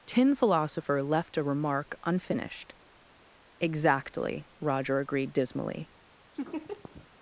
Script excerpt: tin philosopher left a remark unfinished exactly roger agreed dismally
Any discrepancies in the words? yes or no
no